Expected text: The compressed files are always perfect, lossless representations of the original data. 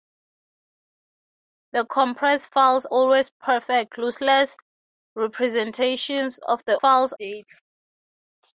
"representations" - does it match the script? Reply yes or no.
yes